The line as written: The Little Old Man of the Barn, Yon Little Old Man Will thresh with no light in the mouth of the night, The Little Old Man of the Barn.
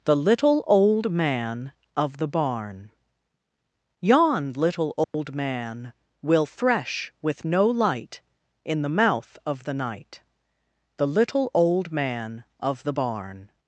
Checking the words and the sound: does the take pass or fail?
fail